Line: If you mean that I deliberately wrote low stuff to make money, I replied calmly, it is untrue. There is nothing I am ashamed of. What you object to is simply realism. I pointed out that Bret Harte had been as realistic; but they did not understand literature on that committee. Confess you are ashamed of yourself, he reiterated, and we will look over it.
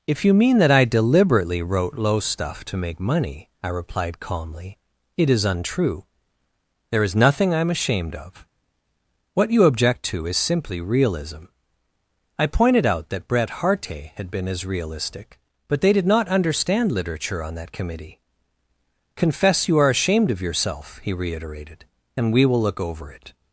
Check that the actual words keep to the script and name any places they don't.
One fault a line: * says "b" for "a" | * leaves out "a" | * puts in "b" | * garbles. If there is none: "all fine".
all fine